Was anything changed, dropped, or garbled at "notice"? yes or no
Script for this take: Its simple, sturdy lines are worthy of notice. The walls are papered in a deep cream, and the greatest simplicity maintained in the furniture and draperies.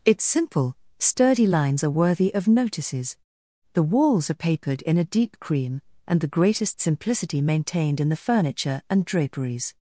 yes